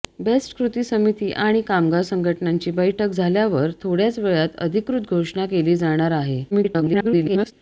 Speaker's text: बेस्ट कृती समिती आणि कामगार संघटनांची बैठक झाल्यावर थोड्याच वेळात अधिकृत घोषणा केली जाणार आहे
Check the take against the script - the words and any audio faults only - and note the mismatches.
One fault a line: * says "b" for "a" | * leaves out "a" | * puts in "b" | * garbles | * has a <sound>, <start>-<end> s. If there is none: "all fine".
* garbles